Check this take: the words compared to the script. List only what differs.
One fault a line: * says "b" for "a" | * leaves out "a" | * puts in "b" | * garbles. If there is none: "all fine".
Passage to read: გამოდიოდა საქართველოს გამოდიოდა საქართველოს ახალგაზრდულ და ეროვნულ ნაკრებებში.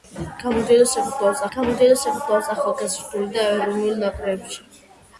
all fine